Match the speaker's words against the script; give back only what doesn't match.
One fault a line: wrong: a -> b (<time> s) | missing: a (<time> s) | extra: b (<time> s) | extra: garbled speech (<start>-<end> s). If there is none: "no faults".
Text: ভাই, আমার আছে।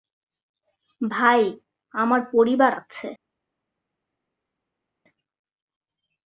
extra: পরিবার (2.3 s)